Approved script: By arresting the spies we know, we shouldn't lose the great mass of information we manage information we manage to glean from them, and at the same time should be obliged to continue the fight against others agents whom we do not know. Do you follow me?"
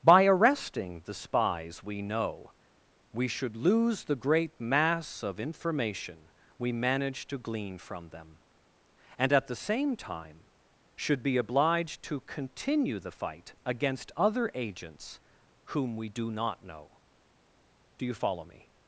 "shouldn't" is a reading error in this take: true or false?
true